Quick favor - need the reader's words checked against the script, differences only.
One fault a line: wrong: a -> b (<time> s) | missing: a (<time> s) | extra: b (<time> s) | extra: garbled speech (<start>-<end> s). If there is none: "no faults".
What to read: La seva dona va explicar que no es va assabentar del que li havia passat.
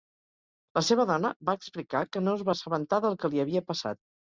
no faults